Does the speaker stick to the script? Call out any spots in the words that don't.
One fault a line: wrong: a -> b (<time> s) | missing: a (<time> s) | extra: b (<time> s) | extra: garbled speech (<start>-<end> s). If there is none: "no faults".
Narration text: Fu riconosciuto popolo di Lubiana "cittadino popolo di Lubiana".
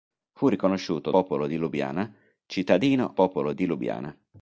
no faults